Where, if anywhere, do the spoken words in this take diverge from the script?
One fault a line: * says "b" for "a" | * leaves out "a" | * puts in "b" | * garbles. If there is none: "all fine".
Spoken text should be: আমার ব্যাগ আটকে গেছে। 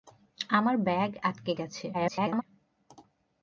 * garbles